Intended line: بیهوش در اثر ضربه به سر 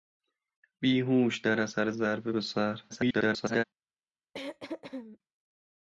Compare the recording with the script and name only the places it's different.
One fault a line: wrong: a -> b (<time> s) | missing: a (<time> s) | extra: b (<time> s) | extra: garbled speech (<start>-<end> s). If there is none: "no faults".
extra: garbled speech (2.9-3.6 s)